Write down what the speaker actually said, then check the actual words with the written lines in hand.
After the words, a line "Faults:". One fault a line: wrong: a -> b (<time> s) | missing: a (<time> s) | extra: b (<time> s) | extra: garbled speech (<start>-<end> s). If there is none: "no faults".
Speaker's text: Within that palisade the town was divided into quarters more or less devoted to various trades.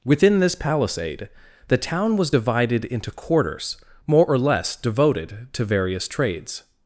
Within this palisade the town was divided into quarters more or less devoted to various trades.
Faults:
wrong: that -> this (0.4 s)